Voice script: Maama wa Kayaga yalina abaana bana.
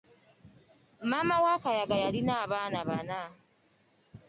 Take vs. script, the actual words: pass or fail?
pass